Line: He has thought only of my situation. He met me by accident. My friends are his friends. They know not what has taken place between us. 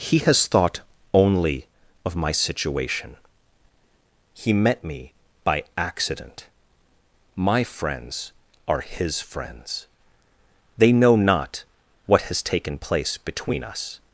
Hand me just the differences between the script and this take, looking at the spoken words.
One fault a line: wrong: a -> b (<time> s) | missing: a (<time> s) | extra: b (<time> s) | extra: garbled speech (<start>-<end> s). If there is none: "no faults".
no faults